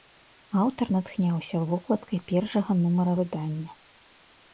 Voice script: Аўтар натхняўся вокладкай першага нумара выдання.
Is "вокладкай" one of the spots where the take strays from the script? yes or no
no